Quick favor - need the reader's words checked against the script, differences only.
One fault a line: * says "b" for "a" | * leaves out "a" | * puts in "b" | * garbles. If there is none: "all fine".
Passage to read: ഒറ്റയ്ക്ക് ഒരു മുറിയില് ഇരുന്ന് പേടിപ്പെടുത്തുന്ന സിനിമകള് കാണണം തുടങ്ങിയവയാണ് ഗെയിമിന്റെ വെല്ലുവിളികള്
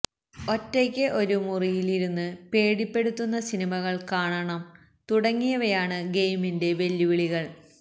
all fine